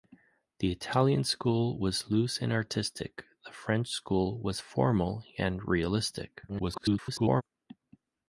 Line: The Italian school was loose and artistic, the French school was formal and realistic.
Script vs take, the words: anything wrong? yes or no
yes